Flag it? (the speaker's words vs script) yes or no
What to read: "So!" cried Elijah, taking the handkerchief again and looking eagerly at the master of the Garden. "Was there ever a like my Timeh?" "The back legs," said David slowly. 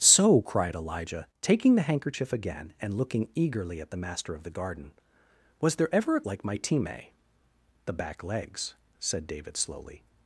no